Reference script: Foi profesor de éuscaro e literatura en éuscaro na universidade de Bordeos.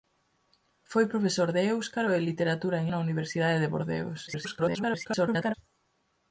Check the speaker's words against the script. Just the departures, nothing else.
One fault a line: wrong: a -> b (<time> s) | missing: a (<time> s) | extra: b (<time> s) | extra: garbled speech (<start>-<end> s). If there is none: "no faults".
missing: éuscaro (2.9 s)
extra: garbled speech (4.3-5.5 s)